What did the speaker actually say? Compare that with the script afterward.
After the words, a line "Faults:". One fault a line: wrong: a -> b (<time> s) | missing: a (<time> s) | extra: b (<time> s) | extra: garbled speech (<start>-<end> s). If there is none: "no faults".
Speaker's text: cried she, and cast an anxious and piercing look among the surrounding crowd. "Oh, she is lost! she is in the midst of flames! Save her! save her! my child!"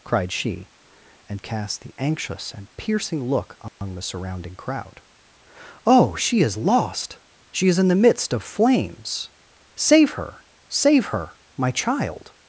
cried she, and cast the anxious and piercing look among the surrounding crowd. "Oh, she is lost! she is in the midst of flames! Save her! save her! my child!"
Faults:
wrong: an -> the (1.8 s)